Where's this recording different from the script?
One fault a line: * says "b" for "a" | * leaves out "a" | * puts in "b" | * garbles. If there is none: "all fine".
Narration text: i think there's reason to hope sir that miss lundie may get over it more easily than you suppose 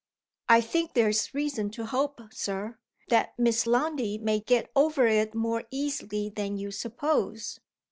all fine